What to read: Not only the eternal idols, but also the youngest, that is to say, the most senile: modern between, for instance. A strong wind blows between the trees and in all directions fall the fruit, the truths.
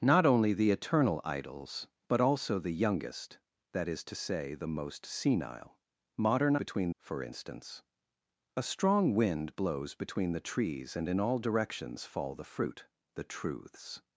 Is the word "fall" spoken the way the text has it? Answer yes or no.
yes